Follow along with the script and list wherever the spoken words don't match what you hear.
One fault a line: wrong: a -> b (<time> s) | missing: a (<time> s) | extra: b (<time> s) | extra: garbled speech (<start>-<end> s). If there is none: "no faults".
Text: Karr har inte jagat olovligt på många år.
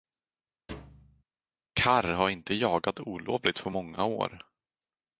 no faults